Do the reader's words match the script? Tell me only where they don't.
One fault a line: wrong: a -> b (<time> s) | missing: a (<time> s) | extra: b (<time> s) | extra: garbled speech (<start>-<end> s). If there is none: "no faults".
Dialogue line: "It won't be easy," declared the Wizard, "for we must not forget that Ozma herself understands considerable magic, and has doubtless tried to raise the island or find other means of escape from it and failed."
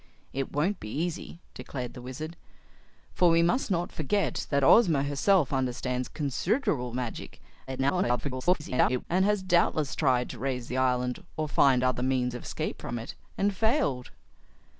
extra: garbled speech (7.7-9.0 s)